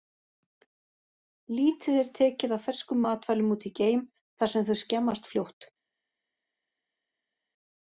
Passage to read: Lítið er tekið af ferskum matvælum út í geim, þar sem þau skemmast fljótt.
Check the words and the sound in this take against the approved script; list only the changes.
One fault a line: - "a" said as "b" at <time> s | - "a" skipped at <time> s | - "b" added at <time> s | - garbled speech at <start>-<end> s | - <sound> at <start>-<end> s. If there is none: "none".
none